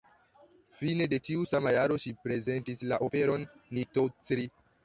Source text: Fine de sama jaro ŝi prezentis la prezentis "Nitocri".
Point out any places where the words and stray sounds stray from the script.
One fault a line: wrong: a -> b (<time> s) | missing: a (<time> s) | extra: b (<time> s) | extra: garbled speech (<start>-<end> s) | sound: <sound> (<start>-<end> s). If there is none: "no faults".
extra: tiu (1.3 s)
wrong: prezentis -> operon (3.1 s)